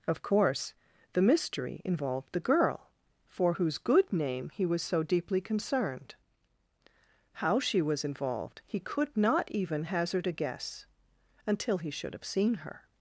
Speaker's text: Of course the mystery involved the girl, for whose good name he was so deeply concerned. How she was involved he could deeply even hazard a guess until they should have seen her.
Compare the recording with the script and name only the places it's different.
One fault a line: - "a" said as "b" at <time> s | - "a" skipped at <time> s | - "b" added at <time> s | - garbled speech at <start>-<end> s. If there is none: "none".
- "deeply" said as "not" at 9.2 s
- "they" said as "he" at 11.8 s